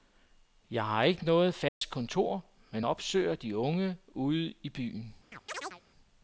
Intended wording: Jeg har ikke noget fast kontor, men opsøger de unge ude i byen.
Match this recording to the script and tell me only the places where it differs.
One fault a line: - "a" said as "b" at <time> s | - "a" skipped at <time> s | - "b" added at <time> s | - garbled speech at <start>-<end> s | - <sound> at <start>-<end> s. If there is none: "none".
- dropout at 1.7-1.8 s
- chirp at 5.3-5.8 s